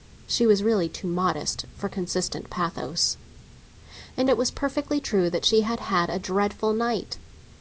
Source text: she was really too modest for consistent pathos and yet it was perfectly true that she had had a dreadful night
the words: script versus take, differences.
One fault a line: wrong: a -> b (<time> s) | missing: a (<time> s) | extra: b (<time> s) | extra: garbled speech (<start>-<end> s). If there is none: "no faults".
missing: yet (4.3 s)